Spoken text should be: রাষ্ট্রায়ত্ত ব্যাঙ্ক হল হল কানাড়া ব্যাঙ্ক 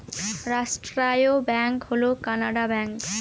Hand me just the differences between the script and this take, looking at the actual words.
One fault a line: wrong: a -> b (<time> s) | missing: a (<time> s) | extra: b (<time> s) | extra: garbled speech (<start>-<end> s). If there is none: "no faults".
missing: হল (2.0 s)